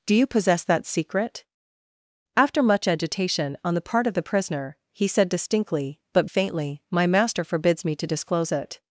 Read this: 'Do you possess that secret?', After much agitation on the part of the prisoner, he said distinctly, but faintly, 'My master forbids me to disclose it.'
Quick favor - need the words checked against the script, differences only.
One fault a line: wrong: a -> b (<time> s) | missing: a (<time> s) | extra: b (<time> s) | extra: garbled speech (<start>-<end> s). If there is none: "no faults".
no faults